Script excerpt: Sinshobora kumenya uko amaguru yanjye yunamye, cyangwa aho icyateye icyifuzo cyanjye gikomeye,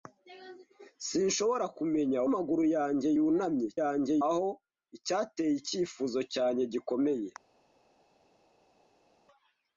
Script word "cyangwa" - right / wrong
wrong